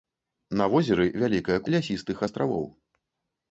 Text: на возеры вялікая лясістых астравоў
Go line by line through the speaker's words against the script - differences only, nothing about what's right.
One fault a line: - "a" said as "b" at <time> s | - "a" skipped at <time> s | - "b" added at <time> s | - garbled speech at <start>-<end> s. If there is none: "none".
none